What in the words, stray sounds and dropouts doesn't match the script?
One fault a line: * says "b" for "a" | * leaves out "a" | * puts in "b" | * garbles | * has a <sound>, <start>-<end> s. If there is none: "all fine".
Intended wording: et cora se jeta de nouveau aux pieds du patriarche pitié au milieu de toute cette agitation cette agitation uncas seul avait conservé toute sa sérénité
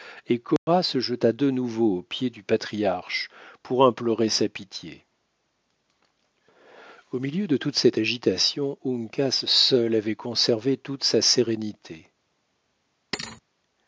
* has a dropout, 0.6-0.7 s
* puts in "pour implorer sa"
* leaves out "cette agitation"
* has a thud, 13.1-13.4 s